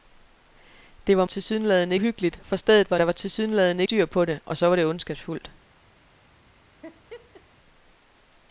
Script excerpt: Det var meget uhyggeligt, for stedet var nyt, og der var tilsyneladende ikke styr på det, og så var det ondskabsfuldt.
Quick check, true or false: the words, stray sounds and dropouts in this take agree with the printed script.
false